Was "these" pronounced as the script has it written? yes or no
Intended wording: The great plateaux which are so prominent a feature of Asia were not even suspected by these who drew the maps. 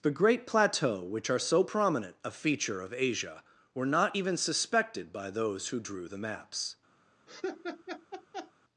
no